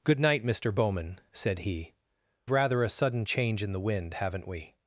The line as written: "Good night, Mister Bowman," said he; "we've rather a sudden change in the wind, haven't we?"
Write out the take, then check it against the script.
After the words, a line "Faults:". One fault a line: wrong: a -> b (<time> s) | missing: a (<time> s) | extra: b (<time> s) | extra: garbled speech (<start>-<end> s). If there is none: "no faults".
"Good night, Mister Bowman," said he; "rather a sudden change in the wind, haven't we?"
Faults:
missing: we've (1.9 s)